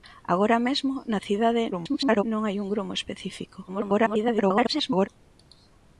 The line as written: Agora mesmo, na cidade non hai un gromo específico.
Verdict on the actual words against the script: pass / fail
fail